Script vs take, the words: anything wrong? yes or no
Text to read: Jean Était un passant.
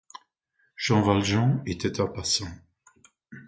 yes